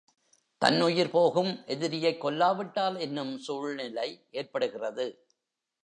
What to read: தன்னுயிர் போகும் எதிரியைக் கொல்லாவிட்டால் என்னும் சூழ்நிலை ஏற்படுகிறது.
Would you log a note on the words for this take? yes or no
no